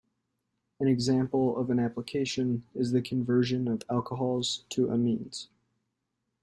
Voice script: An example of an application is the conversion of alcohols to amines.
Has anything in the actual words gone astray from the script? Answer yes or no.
no